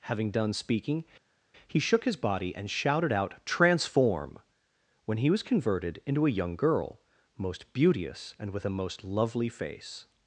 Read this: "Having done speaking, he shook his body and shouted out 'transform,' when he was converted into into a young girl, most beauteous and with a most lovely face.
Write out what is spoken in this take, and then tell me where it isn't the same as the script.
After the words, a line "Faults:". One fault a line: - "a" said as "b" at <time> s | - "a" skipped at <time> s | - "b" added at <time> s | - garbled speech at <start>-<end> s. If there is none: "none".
"Having done speaking, he shook his body and shouted out 'transform,' when he was converted into a young girl, most beauteous and with a most lovely face.
Faults:
- "into" skipped at 6.3 s